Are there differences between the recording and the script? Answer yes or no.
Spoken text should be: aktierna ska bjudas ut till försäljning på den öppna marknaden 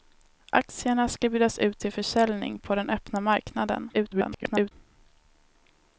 yes